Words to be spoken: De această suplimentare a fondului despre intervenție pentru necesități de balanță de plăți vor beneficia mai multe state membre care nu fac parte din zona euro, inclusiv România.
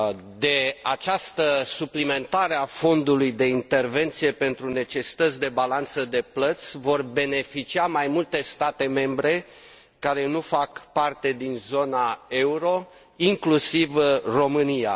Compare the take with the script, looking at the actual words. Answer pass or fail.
fail